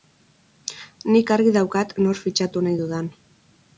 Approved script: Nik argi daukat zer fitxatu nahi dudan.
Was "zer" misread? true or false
true